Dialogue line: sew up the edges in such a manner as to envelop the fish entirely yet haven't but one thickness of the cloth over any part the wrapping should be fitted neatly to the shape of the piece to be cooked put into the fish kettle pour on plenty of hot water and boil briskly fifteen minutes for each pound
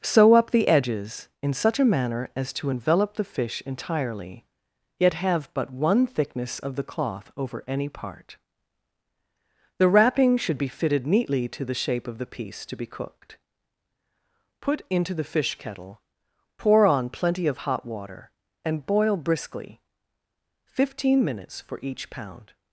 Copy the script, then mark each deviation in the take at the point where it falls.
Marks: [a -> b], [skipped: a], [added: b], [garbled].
sew up the edges in such a manner as to envelop the fish entirely yet [haven't -> have] but one thickness of the cloth over any part the wrapping should be fitted neatly to the shape of the piece to be cooked put into the fish kettle pour on plenty of hot water and boil briskly fifteen minutes for each pound